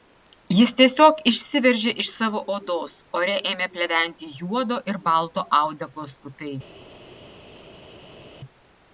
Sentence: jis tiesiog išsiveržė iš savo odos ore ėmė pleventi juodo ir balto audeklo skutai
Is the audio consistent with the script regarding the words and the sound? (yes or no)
yes